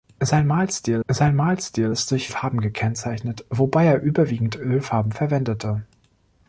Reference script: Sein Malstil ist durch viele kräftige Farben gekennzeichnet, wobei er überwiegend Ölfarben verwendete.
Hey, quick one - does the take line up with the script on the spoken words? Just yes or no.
no